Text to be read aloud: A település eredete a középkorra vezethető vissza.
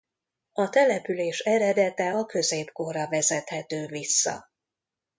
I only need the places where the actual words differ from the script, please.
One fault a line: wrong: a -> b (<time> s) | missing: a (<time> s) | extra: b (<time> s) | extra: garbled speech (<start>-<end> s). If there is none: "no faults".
no faults